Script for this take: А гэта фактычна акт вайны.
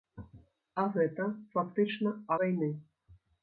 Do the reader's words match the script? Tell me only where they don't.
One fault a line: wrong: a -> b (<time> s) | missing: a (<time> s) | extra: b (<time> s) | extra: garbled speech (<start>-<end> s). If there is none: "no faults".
missing: акт (2.2 s)